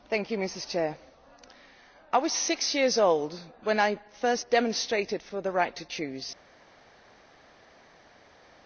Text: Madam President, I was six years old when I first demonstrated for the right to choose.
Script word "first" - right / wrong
right